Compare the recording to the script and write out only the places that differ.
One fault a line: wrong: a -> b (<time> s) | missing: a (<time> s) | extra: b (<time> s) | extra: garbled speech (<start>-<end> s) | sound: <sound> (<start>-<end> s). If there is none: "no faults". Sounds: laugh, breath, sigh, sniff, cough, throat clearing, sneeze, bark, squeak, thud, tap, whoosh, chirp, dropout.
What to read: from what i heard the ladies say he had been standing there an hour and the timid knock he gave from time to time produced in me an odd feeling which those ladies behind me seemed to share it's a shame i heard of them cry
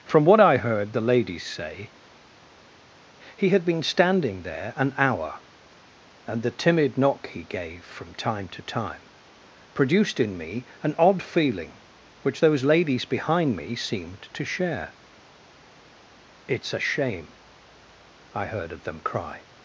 no faults